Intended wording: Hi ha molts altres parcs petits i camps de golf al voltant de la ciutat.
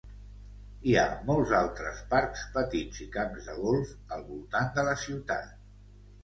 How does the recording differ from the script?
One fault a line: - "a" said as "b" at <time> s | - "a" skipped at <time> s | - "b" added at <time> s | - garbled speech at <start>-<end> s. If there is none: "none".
none